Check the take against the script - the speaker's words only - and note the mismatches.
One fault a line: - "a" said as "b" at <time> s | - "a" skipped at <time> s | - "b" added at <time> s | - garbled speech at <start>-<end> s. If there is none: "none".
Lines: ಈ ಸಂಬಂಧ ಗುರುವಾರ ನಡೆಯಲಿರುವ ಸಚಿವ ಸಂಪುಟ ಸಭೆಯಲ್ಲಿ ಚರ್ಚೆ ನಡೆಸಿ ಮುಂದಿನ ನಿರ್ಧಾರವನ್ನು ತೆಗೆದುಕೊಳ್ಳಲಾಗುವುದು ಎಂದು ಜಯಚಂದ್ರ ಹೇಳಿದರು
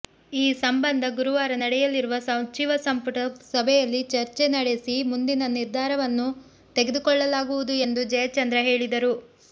none